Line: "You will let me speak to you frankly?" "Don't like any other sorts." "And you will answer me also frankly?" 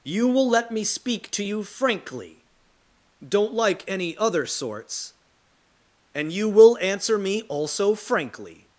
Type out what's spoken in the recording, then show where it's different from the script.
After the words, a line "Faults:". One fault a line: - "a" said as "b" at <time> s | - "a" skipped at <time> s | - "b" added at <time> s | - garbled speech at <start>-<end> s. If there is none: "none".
"You will let me speak to you frankly?" "Don't like any other sorts." "And you will answer me also frankly?"
Faults:
none